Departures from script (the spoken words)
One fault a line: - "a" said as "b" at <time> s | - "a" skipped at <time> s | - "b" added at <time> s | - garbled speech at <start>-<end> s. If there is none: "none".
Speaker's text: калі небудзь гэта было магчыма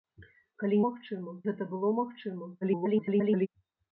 - "небудзь" said as "магчыма" at 0.9 s
- garbled speech at 2.6-3.5 s